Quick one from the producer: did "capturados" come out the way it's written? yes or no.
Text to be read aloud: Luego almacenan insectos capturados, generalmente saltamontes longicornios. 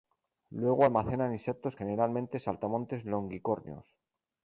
no